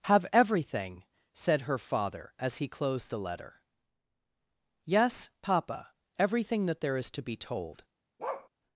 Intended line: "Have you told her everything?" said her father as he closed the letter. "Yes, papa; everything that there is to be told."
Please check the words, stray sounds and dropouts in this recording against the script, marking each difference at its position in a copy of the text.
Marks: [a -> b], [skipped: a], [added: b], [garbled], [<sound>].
"Have [skipped: you told her] everything?" said her father as he closed the letter. "Yes, papa; everything that there is to be told." [bark]